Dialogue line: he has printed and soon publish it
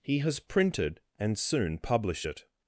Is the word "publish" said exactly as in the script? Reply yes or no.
yes